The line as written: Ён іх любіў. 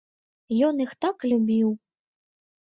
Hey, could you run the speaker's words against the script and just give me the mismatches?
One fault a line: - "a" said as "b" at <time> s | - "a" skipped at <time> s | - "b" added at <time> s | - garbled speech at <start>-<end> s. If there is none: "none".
- "так" added at 1.1 s